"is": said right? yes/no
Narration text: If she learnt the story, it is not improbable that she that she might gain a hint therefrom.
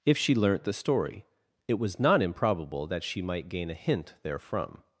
no